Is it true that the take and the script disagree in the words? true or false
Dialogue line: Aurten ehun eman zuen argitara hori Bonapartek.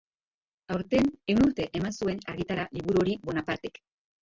true